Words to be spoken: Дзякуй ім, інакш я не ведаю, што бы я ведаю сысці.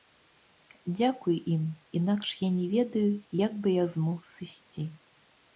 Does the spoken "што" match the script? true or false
false